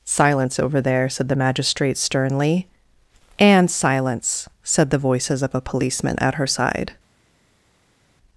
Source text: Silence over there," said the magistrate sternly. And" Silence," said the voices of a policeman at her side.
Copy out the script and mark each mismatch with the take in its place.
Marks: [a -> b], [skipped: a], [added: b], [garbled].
Silence over there," said the magistrate sternly. And" Silence," said the voices of a policeman at her side.